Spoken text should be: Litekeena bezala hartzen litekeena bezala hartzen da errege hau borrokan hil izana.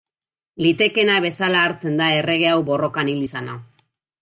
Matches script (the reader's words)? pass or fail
fail